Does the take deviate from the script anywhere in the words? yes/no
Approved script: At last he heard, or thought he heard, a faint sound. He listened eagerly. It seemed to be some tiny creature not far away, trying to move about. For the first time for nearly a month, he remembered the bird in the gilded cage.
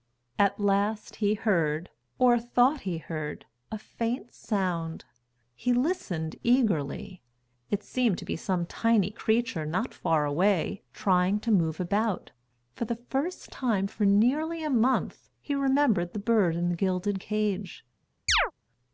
no